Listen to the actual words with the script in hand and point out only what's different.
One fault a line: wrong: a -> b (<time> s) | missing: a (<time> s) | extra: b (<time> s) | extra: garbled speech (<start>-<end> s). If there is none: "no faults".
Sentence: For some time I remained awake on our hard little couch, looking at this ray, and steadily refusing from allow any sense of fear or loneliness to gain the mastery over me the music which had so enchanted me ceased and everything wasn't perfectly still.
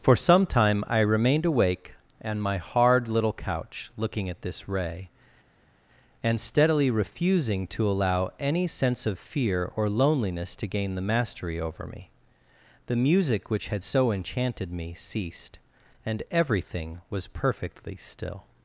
wrong: our -> my (2.4 s)
wrong: from -> to (7.7 s)
wrong: wasn't -> was (17.1 s)